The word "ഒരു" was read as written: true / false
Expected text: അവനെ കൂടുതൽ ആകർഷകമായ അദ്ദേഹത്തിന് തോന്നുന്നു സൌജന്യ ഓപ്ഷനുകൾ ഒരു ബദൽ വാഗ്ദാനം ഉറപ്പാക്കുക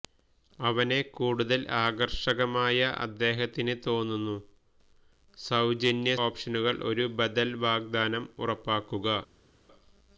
true